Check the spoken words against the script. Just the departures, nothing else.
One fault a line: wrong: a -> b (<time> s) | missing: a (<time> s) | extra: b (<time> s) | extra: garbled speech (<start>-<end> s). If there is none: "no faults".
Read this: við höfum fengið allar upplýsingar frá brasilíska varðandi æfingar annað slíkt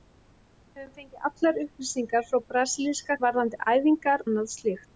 no faults